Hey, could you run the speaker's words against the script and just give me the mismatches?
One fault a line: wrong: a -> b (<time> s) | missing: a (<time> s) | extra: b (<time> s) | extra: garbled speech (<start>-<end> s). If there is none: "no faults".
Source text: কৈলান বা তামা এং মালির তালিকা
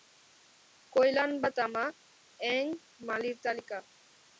no faults